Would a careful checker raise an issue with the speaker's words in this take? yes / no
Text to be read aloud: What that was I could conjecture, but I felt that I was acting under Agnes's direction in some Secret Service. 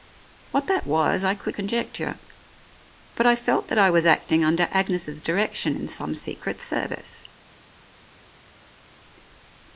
no